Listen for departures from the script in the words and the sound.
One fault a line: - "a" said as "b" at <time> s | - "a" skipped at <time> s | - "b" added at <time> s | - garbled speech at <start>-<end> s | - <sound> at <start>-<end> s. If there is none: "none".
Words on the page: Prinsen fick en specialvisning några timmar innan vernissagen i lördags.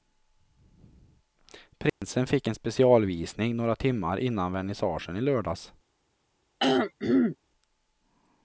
- dropout at 1.9-2.0 s
- throat clearing at 6.6-7.4 s